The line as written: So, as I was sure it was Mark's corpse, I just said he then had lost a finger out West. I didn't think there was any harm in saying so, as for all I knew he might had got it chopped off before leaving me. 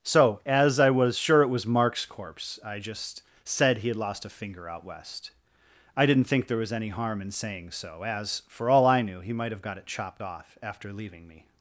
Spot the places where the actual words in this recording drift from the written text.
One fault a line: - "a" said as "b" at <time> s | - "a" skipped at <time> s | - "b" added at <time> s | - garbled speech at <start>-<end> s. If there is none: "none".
- "then" skipped at 3.9 s
- "had" said as "have" at 9.5 s
- "before" said as "after" at 10.6 s